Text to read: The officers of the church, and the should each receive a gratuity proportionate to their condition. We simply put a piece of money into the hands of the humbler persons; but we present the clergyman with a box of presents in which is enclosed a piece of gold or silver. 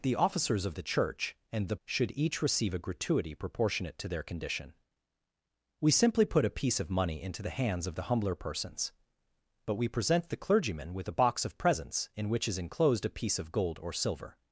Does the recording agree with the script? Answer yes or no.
yes